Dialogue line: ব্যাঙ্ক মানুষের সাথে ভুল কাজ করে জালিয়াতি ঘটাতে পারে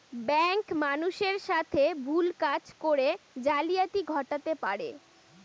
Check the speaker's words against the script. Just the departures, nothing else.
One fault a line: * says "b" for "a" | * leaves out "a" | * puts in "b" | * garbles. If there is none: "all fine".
all fine